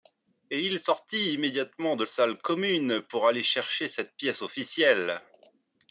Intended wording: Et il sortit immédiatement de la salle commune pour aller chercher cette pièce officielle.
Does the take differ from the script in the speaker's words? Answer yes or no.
yes